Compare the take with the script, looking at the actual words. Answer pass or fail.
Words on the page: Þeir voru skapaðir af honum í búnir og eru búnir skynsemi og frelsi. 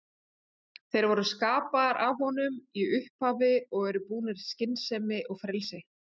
fail